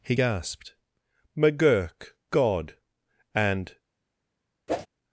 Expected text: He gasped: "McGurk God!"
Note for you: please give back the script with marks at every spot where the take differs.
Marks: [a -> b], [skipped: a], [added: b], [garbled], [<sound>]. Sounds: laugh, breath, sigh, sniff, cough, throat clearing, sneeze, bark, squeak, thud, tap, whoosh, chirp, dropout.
He gasped: "McGurk God!" [added: and] [whoosh]